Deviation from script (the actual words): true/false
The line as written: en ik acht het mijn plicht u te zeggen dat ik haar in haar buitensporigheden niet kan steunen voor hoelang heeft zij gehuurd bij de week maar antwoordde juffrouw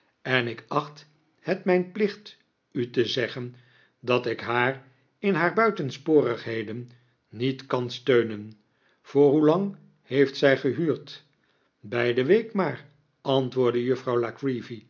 false